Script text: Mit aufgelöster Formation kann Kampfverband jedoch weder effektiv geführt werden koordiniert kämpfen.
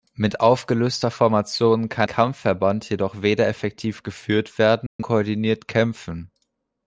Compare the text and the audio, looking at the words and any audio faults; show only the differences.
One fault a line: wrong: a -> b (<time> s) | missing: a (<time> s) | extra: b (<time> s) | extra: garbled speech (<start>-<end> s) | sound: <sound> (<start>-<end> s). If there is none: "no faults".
sound: dropout (4.9-5.0 s)